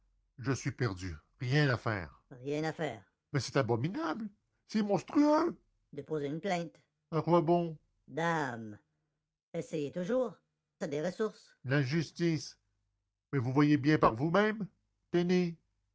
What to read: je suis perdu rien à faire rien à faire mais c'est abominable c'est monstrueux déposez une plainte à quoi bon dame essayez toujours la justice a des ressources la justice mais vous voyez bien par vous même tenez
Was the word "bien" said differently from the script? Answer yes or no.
no